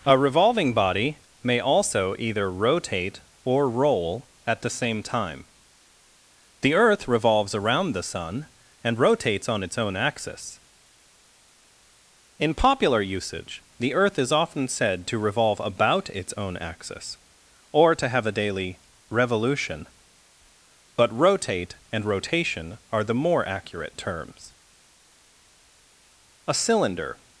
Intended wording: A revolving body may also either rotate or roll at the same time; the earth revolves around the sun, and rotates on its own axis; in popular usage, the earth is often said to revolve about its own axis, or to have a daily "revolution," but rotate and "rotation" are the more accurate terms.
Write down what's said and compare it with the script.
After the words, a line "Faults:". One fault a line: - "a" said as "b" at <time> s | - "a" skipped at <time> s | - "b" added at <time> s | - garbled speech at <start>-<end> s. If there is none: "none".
A revolving body may also either rotate or roll at the same time; the earth revolves around the sun, and rotates on its own axis; in popular usage, the earth is often said to revolve about its own axis, or to have a daily "revolution," but rotate and "rotation" are the more accurate terms. A cylinder
Faults:
- "A cylinder" added at 26.5 s